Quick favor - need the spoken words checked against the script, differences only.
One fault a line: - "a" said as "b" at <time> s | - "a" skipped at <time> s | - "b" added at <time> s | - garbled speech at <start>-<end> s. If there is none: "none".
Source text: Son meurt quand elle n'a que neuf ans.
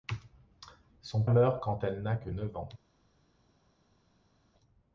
none